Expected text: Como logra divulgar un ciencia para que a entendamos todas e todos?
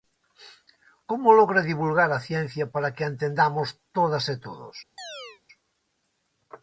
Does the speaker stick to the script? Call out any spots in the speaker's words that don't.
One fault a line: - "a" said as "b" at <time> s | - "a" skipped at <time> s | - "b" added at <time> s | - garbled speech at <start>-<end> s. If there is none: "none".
- "un" said as "a" at 2.1 s